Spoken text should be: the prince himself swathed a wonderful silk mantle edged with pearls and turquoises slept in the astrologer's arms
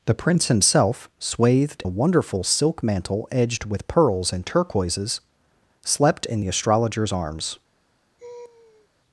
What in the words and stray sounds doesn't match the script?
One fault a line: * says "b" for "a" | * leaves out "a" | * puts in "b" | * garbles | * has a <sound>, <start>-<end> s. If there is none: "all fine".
* has a laugh, 8.2-8.9 s